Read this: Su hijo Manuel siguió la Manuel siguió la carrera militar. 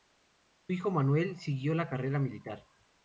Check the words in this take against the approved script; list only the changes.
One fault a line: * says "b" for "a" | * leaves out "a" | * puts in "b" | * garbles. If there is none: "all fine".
* leaves out "Manuel siguió la"